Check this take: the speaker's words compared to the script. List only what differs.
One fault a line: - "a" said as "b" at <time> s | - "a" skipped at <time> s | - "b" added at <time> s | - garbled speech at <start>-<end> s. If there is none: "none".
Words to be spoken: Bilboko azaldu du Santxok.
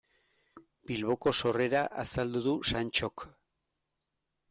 - "sorrera" added at 1.4 s